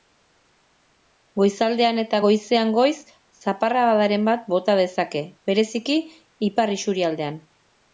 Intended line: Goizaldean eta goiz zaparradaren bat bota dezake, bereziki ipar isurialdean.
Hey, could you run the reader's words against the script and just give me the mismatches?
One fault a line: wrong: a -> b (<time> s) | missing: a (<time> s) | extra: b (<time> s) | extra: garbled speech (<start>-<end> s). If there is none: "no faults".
extra: goizean (2.3 s)